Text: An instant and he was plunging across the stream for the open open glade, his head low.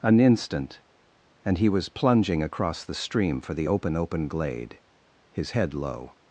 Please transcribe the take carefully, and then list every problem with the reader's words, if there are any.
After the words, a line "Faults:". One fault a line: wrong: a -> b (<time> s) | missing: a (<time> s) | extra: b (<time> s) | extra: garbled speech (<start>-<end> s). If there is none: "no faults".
An instant and he was plunging across the stream for the open open glade, his head low.
Faults:
no faults